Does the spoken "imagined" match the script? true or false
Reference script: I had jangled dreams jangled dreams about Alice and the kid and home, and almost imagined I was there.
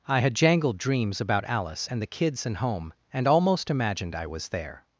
true